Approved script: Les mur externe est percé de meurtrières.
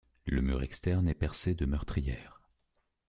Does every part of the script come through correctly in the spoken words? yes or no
no